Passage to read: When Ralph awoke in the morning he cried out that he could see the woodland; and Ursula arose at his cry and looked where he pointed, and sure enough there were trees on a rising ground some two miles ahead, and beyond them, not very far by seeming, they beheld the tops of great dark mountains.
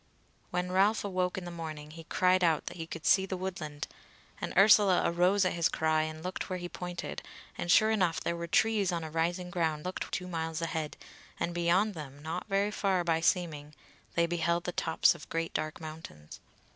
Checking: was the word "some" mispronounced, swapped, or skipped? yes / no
yes